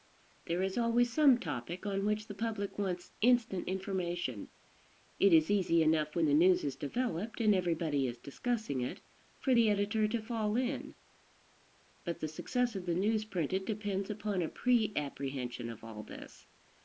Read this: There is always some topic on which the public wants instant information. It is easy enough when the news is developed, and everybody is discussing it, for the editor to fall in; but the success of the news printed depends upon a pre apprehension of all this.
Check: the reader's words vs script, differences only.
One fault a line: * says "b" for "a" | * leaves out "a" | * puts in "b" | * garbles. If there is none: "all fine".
all fine